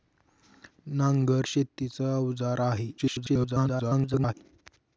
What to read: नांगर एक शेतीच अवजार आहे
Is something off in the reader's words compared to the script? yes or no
yes